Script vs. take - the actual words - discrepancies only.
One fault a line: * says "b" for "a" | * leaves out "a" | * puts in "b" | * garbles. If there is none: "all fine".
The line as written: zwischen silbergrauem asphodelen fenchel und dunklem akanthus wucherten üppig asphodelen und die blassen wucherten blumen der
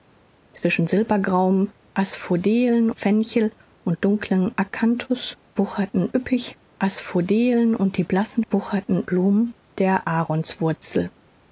all fine